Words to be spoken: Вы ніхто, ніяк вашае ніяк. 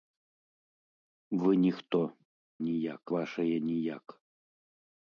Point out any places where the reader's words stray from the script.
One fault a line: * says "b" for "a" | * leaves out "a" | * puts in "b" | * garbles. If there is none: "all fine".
all fine